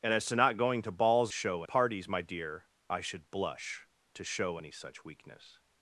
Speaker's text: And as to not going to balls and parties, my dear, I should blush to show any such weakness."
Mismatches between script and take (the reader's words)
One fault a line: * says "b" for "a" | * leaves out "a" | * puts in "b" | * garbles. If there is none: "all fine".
* says "show" for "and"